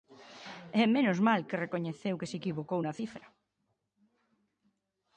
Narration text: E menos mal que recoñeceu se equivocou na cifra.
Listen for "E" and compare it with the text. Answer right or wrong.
right